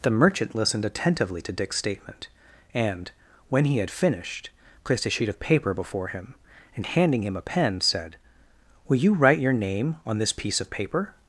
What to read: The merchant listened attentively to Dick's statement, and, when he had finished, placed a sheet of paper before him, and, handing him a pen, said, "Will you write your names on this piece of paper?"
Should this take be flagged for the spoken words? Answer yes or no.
yes